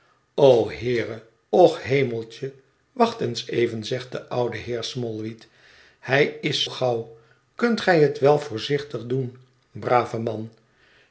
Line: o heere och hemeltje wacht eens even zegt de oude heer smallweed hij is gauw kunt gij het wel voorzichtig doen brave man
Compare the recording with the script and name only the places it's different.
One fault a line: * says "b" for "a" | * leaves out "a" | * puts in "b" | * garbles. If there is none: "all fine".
all fine